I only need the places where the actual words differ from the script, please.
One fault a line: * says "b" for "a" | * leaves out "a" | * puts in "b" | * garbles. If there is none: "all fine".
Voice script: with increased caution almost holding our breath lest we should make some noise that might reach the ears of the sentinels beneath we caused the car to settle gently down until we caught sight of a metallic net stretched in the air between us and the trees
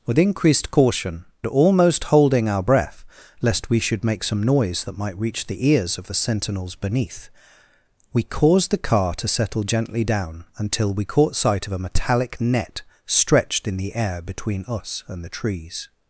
all fine